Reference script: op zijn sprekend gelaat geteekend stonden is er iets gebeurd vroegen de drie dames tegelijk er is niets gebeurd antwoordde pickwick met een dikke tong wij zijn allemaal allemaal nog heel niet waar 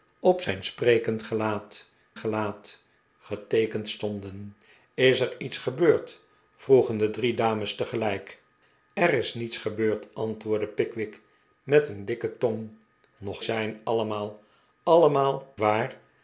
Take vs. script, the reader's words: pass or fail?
fail